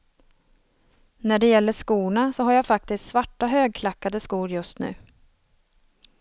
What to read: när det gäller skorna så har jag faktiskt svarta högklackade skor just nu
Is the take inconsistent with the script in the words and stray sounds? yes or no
no